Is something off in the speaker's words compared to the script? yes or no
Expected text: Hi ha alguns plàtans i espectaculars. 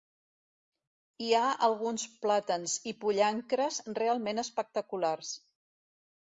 yes